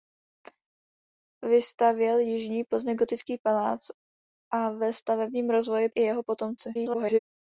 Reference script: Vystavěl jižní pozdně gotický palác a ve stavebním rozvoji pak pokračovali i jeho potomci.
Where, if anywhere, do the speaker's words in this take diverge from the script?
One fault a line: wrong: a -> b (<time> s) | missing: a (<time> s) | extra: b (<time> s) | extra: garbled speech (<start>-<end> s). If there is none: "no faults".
missing: pak pokračovali (5.9 s)
extra: garbled speech (6.7-7.2 s)